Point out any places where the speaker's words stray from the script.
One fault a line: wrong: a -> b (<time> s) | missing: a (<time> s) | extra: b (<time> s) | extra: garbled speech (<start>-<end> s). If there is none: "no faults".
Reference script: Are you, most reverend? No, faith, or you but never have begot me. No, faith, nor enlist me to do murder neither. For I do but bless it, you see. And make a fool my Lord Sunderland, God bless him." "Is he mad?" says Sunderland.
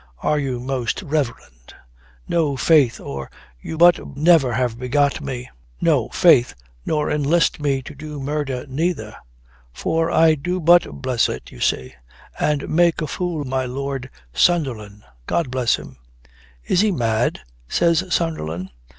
no faults